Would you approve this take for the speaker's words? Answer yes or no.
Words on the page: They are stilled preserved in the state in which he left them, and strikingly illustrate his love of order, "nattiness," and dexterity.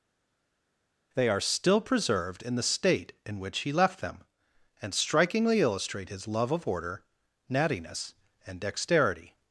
no